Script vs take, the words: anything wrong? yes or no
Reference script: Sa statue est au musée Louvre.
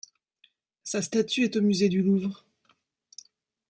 yes